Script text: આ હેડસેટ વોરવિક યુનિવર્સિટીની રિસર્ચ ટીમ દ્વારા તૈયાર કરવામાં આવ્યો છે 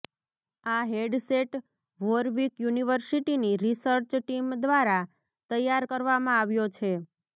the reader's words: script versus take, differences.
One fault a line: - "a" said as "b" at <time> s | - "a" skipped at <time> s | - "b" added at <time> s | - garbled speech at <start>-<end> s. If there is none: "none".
none